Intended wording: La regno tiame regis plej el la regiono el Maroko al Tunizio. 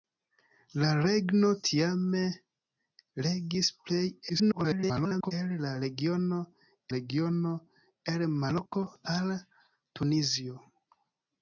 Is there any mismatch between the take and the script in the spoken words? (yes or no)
yes